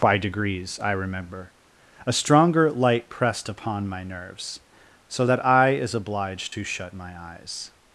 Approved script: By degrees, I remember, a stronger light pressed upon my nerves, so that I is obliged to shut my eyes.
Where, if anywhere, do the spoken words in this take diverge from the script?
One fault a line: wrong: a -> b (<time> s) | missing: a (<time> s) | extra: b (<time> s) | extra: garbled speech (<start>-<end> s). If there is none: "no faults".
no faults